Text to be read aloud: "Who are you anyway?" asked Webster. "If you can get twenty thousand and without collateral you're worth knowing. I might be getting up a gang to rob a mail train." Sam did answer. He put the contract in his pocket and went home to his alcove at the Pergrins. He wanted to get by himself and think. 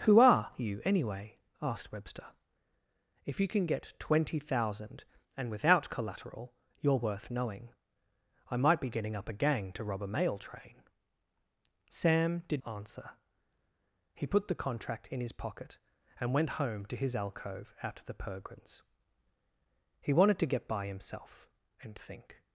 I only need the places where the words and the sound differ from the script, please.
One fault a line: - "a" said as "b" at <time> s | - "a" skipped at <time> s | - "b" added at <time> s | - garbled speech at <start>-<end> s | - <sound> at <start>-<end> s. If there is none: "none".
none